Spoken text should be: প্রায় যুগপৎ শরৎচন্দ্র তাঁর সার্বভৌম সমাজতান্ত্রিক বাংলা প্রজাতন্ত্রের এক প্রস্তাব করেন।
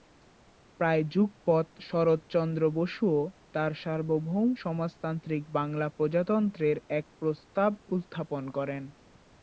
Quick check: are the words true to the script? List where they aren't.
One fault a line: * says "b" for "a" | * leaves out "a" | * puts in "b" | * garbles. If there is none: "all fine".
* puts in "বসুও"
* puts in "উত্থাপন"